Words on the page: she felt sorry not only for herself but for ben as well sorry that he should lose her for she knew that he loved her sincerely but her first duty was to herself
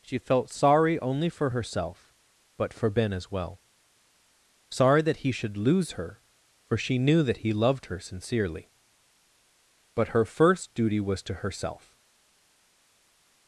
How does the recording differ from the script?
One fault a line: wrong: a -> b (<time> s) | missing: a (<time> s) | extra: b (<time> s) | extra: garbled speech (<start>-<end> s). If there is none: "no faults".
missing: not (1.0 s)